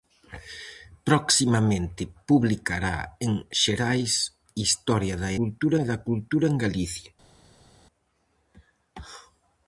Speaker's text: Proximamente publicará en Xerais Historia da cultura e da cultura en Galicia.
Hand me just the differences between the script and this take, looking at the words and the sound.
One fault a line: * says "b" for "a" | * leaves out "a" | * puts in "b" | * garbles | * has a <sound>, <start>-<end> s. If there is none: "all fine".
all fine